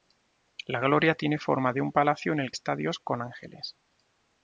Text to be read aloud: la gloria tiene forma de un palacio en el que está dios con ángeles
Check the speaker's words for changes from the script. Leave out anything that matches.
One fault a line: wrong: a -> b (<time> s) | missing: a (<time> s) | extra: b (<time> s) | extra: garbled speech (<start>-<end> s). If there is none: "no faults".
missing: que (2.5 s)